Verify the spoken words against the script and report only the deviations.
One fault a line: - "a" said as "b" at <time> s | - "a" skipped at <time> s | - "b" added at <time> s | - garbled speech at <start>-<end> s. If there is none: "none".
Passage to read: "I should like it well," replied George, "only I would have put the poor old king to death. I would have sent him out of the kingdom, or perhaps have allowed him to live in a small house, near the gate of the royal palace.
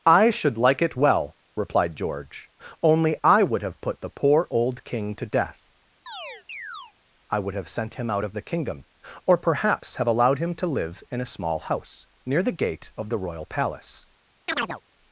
none